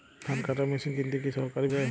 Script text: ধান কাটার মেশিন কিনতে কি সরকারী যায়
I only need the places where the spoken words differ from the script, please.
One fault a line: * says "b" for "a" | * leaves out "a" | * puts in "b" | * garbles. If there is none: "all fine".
all fine